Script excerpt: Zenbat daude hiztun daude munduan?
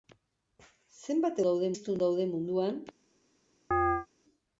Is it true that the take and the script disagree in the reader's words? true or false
false